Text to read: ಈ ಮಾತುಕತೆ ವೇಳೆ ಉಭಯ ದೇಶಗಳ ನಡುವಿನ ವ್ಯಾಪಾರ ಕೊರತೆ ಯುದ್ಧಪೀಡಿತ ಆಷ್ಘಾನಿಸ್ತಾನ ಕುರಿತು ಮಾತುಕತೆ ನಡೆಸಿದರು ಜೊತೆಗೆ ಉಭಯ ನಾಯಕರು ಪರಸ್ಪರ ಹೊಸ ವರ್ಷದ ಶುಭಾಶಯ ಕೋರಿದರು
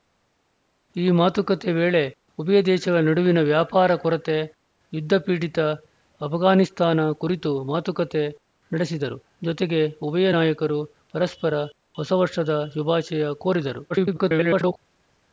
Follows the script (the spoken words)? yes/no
no